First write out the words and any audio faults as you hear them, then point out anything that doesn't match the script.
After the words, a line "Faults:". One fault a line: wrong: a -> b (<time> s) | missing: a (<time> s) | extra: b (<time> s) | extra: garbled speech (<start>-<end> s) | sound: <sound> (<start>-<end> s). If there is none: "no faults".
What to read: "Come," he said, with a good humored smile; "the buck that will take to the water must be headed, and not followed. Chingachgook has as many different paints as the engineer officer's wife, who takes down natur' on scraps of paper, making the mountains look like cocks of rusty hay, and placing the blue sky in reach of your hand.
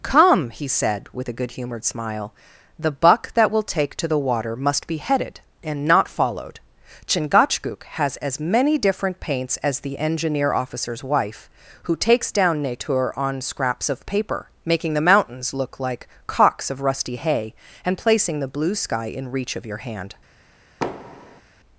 "Come," he said, with a good humored smile; "the buck that will take to the water must be headed, and not followed. Chingachgook has as many different paints as the engineer officer's wife, who takes down natur' on scraps of paper, making the mountains look like cocks of rusty hay, and placing the blue sky in reach of your hand.
Faults:
sound: thud (20.8-21.4 s)